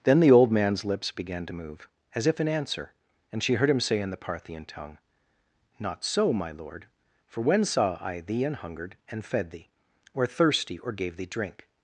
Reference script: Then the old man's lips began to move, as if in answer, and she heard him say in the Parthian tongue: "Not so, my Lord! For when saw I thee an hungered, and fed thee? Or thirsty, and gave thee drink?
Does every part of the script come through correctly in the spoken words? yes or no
no